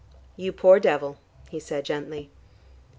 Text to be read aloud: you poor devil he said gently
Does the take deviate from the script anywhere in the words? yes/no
no